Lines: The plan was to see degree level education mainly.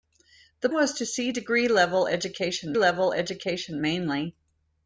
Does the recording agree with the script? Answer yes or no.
no